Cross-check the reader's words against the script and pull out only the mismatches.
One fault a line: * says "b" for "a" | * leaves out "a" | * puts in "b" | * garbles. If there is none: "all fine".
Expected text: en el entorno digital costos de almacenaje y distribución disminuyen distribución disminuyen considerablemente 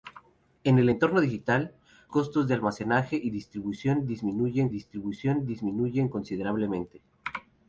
all fine